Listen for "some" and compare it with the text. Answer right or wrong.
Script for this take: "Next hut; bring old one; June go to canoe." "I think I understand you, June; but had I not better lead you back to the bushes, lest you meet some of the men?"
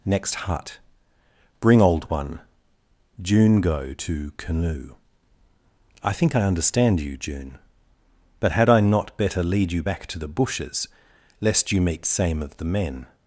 wrong